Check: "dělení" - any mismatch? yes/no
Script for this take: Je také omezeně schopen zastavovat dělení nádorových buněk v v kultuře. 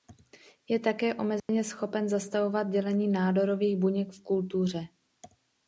no